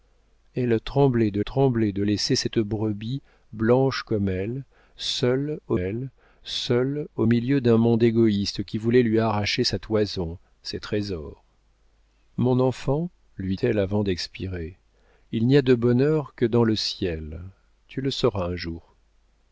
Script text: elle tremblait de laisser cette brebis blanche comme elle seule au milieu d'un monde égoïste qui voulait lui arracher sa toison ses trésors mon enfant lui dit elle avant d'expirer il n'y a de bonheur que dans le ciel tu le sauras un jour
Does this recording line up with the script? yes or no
no